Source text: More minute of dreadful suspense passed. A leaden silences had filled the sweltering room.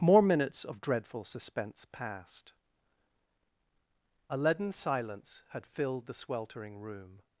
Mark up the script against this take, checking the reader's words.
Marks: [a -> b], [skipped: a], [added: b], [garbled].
More [minute -> minutes] of dreadful suspense passed. A leaden [silences -> silence] had filled the sweltering room.